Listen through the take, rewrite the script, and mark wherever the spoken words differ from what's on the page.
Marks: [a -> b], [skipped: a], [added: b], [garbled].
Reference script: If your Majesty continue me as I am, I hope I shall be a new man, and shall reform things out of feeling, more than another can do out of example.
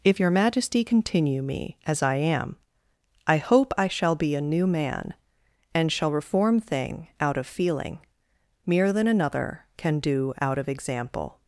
If your Majesty continue me as I am, I hope I shall be a new man, and shall reform [things -> thing] out of feeling, [more -> mere] than another can do out of example.